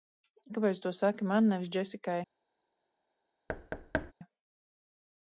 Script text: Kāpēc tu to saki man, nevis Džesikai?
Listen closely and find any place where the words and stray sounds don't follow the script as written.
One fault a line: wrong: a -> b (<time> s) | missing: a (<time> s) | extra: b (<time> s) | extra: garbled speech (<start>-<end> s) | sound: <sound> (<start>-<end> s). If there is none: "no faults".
sound: thud (3.5-4.1 s)